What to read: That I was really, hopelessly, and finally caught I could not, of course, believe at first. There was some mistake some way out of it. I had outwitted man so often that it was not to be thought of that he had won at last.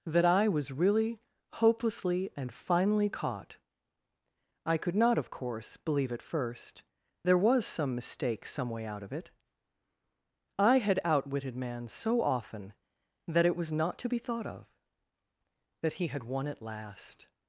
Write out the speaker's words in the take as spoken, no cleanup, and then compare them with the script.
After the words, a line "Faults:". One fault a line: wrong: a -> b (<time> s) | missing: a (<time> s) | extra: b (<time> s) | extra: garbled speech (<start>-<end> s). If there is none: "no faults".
That I was really, hopelessly, and finally caught I could not, of course, believe at first. There was some mistake some way out of it. I had outwitted man so often that it was not to be thought of that he had won at last.
Faults:
no faults